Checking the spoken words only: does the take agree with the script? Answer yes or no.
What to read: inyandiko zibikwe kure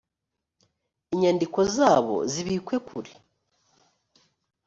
no